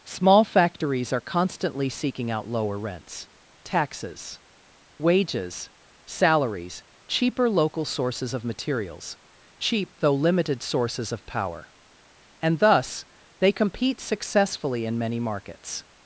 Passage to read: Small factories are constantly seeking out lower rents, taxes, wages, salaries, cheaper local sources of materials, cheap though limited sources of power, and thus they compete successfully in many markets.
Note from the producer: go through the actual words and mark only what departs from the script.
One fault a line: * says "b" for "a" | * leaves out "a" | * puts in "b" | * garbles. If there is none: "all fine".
all fine